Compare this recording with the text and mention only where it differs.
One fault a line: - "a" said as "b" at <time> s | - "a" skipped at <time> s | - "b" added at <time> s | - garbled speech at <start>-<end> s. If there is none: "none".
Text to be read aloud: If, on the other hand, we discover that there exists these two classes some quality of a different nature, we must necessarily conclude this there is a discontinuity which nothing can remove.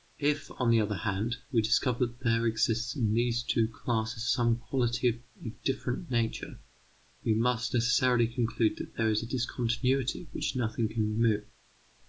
- "in" added at 2.9 s
- "this" said as "that" at 8.8 s